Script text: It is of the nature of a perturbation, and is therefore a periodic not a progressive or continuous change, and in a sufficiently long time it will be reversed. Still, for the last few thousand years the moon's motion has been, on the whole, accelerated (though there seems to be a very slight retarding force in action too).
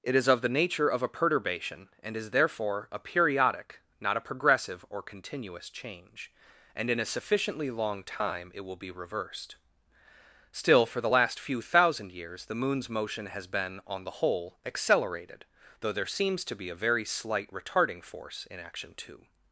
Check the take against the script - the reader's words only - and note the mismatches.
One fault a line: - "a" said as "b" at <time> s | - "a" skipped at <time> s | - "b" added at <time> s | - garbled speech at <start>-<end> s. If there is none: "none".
none